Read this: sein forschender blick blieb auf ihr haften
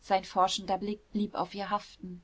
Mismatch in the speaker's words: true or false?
false